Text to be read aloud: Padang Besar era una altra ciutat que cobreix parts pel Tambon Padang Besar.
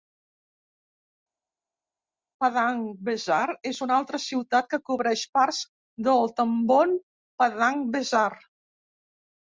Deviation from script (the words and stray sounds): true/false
true